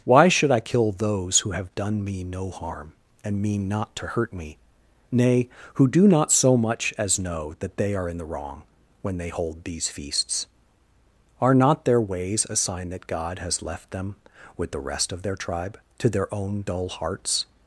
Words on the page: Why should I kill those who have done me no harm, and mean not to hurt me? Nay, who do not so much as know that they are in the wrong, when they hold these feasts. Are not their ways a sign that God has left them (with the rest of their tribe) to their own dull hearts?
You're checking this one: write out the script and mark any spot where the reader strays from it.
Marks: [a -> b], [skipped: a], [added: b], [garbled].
Why should I kill those who have done me no harm, and mean not to hurt me? Nay, who do not so much as know that they are in the wrong, when they hold these feasts. Are not their ways a sign that God has left them (with the rest of their tribe) to their own dull hearts?